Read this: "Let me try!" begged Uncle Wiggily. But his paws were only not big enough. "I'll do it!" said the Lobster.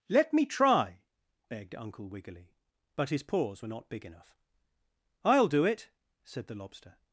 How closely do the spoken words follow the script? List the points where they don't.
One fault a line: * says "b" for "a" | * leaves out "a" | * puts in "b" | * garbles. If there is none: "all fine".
* leaves out "only"